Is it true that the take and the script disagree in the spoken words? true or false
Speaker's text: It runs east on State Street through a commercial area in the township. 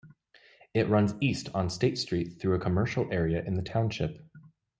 false